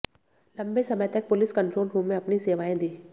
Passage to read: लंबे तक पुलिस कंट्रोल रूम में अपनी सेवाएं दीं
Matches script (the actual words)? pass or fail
fail